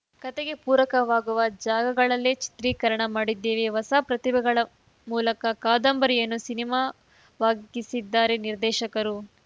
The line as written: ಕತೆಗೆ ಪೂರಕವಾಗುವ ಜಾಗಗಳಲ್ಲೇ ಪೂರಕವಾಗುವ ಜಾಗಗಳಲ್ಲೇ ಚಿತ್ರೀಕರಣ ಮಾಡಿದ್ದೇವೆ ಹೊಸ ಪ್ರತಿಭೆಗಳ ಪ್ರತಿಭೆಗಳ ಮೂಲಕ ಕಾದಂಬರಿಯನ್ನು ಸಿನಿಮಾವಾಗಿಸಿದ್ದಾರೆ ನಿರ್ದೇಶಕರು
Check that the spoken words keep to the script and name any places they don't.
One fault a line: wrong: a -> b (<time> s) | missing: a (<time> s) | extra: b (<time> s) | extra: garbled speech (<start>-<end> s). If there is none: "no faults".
missing: ಪೂರಕವಾಗುವ ಜಾಗಗಳಲ್ಲೇ (2.3 s)
missing: ಪ್ರತಿಭೆಗಳ (4.6 s)